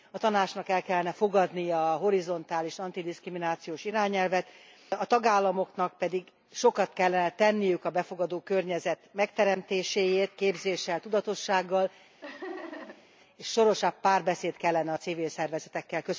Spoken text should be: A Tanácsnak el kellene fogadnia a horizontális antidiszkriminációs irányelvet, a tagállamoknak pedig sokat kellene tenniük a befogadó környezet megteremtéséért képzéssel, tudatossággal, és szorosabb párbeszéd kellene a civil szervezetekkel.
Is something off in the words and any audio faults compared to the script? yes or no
yes